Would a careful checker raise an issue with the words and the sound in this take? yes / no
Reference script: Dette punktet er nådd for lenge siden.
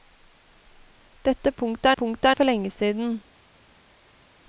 yes